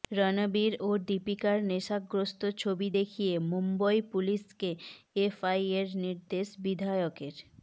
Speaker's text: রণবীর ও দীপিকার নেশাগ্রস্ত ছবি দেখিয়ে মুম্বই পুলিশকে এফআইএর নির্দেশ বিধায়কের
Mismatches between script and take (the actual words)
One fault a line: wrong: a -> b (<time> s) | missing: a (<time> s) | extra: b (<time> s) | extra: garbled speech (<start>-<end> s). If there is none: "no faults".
no faults